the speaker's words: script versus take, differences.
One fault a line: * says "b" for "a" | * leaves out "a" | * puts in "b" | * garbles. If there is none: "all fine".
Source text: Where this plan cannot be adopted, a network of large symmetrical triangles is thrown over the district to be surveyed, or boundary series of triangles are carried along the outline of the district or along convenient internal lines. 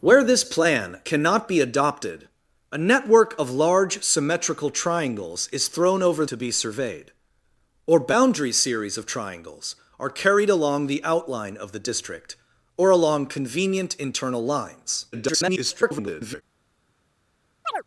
* leaves out "the district"
* garbles